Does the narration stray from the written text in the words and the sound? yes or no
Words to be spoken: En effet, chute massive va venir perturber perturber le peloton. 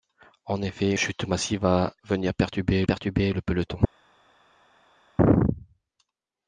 no